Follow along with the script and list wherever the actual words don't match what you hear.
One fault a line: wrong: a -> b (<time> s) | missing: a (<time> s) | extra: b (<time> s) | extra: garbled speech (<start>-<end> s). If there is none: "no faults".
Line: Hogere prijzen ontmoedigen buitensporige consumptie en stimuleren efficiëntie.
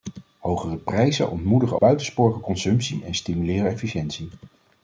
no faults